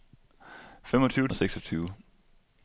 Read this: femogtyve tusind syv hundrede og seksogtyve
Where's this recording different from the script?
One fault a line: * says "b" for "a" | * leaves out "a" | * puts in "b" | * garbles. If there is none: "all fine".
* leaves out "tusind syv hundrede"